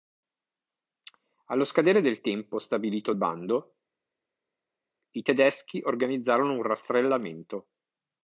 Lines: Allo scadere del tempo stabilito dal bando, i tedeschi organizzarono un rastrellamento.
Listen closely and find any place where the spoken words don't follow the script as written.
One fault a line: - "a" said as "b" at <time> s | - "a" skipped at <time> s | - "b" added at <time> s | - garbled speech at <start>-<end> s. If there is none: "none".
- "dal" skipped at 3.1 s